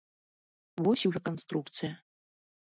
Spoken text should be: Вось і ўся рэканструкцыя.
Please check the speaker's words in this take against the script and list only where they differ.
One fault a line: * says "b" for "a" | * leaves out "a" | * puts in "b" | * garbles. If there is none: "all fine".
* leaves out "ўся"